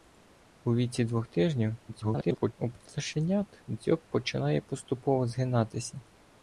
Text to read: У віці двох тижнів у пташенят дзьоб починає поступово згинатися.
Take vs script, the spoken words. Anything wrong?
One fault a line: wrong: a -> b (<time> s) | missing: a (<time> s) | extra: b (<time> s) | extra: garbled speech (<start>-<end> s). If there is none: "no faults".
extra: garbled speech (1.9-2.5 s)